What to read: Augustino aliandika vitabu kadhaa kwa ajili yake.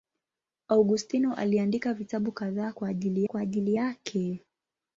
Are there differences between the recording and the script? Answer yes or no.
yes